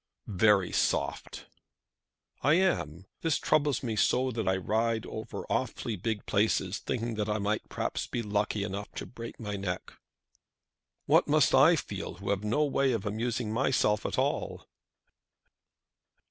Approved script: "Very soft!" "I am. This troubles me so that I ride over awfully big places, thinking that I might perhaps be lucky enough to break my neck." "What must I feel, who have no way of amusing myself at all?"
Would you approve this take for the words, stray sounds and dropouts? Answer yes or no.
yes